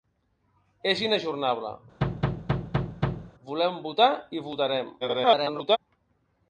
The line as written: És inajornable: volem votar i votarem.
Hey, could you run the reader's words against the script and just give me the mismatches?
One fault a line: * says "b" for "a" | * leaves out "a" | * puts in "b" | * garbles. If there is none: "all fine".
* garbles